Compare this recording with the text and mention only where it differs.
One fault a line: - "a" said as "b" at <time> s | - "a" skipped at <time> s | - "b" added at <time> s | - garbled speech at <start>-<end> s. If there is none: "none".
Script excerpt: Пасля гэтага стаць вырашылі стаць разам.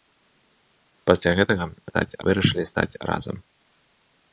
none